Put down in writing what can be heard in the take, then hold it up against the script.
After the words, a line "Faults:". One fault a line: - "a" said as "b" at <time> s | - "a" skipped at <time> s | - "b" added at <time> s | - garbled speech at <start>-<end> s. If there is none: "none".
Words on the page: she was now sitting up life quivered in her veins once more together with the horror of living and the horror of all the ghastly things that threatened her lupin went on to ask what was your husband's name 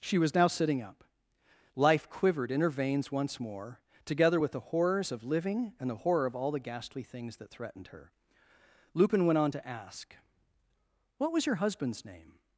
she was now sitting up life quivered in her veins once more together with the horrors of living and the horror of all the ghastly things that threatened her lupin went on to ask what was your husband's name
Faults:
- "horror" said as "horrors" at 4.6 s